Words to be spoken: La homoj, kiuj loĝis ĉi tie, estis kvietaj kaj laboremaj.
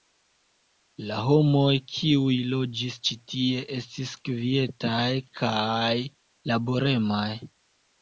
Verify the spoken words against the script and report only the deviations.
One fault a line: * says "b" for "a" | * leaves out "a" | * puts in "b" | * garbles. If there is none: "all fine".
all fine